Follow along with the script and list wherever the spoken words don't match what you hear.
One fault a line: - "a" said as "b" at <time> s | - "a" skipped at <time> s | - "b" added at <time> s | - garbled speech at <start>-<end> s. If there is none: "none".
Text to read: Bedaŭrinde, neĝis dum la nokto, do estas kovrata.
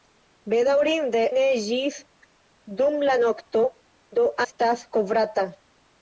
none